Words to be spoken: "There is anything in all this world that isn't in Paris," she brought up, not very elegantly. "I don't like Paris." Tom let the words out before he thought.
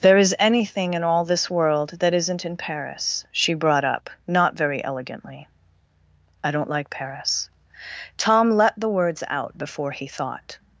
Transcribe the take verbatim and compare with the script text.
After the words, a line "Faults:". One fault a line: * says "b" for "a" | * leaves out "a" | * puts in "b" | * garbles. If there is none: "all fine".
"There is anything in all this world that isn't in Paris," she brought up, not very elegantly. "I don't like Paris." Tom let the words out before he thought.
Faults:
all fine